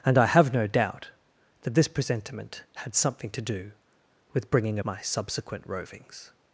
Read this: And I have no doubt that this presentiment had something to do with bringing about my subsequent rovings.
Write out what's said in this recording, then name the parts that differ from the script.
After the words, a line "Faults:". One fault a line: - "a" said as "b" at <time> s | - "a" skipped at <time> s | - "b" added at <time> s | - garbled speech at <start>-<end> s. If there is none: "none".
And I have no doubt that this presentiment had something to do with bringing my subsequent rovings.
Faults:
- "about" skipped at 4.8 s